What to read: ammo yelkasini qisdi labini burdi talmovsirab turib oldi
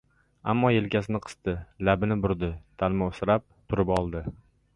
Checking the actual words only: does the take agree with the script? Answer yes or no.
yes